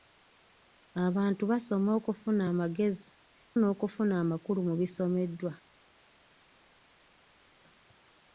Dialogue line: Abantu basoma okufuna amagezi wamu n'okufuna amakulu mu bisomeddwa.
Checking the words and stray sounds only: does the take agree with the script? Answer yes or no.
no